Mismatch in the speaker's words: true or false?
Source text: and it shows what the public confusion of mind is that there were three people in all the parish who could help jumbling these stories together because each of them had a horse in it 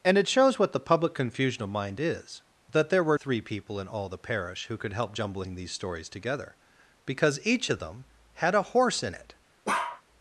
false